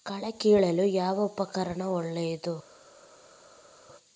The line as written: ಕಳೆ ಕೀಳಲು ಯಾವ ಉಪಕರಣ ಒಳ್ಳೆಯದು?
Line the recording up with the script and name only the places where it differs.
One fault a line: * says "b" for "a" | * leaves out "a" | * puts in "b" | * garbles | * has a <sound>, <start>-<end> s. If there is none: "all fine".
all fine